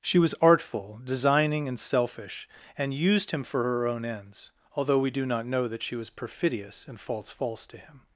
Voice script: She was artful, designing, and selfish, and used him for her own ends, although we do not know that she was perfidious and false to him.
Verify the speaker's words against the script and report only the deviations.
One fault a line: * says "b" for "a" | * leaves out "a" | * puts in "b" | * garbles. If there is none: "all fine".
* puts in "false"